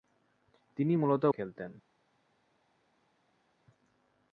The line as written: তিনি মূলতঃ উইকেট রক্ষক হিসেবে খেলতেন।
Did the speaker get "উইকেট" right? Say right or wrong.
wrong